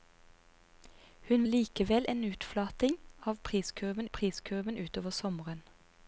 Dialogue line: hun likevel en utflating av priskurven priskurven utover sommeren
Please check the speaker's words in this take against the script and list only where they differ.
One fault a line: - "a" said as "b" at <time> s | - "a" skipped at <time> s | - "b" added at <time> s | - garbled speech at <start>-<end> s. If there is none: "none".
none